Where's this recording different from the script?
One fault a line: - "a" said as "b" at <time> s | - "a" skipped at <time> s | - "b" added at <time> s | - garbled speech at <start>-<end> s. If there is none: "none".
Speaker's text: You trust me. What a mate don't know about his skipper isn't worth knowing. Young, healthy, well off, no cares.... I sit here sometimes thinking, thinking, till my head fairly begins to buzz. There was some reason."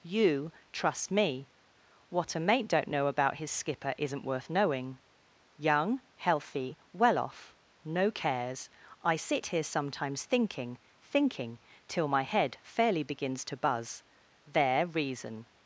- "was some" skipped at 14.8 s